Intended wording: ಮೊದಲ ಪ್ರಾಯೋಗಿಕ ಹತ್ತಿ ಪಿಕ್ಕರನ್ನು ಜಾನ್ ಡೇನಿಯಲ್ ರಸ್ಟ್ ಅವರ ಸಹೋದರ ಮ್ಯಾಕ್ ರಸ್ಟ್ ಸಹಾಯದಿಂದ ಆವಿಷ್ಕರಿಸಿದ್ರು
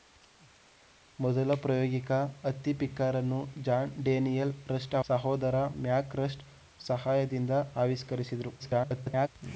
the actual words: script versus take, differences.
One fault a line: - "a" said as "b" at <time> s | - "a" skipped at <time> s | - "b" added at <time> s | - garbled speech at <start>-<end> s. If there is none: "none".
- "ಅವರ" skipped at 5.0 s
- garbled speech at 8.6-9.3 s